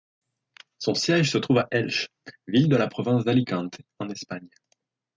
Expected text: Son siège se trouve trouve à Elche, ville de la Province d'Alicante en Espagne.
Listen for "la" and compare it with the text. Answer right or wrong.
right